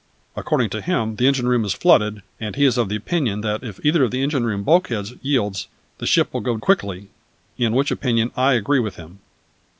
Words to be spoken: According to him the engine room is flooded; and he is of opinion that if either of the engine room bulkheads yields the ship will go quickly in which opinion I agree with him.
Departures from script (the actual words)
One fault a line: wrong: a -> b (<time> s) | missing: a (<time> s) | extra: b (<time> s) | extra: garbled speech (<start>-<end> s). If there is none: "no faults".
no faults